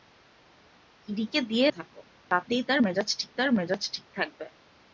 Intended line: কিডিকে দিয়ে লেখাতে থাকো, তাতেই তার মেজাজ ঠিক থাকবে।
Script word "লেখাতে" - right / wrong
wrong